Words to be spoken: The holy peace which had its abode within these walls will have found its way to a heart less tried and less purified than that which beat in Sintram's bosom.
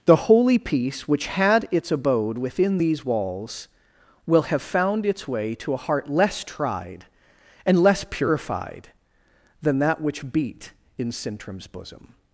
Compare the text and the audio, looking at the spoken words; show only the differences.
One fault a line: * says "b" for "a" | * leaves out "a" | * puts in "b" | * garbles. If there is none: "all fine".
all fine